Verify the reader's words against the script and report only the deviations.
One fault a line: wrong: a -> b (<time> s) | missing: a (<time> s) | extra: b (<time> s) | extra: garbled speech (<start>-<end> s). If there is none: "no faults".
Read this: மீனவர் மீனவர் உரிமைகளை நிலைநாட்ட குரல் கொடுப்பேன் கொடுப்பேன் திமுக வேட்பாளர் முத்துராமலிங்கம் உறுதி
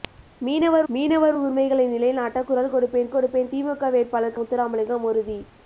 no faults